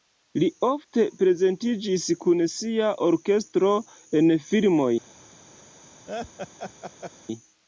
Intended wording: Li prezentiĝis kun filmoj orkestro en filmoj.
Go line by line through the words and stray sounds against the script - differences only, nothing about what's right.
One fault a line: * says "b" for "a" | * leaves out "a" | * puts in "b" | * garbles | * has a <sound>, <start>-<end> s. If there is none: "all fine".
* puts in "ofte"
* says "sia" for "filmoj"
* has a laugh, 6.1-7.1 s